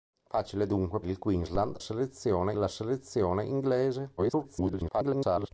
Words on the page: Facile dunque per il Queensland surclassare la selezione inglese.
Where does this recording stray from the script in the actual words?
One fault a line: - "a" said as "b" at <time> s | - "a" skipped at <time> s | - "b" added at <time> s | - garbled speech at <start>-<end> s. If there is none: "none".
- "per" skipped at 1.0 s
- "surclassare" said as "selezione" at 1.8 s
- garbled speech at 4.2-5.5 s